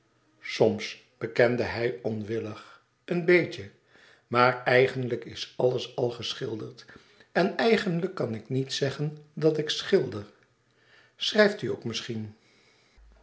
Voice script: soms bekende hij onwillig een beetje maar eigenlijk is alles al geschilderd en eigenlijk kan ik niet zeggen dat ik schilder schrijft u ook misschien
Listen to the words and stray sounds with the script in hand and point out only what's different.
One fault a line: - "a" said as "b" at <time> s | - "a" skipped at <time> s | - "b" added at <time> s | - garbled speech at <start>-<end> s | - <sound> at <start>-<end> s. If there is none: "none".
none